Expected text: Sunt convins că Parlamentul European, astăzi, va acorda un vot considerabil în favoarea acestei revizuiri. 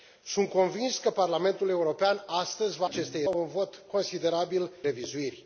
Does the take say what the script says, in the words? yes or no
no